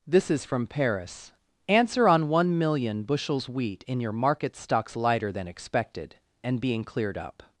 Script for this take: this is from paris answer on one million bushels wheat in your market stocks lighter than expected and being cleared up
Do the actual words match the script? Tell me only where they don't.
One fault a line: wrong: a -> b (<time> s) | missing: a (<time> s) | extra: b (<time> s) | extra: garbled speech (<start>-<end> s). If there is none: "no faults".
no faults